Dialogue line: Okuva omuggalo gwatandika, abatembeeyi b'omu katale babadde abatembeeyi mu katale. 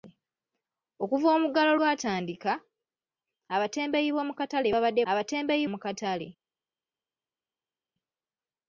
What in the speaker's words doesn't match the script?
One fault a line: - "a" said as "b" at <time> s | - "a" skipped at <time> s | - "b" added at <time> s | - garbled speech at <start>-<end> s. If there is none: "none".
none